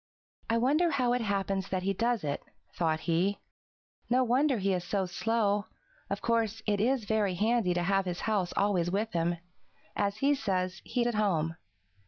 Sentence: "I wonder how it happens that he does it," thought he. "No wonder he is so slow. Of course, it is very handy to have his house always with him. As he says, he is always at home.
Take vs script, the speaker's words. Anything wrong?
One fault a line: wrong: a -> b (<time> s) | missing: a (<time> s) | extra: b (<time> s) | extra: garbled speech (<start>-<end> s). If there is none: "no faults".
missing: is always (11.0 s)